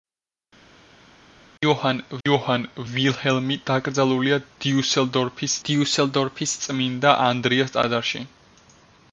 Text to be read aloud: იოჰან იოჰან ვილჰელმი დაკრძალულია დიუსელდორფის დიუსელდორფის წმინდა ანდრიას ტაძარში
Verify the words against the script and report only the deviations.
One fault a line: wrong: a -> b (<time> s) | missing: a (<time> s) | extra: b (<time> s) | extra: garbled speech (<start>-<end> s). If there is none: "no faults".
no faults